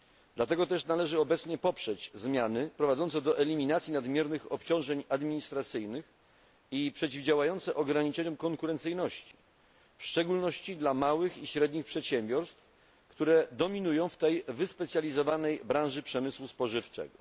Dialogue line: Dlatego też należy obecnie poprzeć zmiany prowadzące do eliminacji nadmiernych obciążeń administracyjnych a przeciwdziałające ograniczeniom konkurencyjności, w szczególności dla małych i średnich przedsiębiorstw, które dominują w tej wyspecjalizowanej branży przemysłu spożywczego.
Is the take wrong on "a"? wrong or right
wrong